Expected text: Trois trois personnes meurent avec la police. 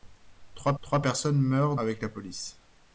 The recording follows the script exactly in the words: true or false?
true